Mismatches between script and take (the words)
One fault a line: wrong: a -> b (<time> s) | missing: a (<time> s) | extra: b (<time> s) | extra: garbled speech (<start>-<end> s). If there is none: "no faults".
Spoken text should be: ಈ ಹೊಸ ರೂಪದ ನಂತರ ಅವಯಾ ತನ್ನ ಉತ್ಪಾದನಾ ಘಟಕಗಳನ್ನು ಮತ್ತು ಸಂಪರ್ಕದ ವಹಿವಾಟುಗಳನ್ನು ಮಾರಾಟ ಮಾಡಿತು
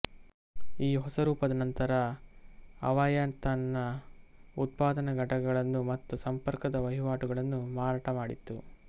no faults